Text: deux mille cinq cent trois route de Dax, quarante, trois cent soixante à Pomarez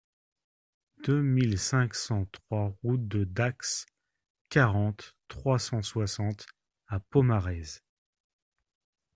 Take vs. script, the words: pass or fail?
pass